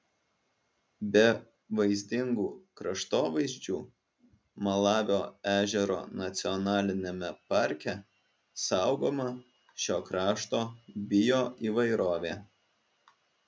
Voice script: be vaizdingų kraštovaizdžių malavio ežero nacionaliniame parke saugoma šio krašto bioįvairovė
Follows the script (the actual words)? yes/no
yes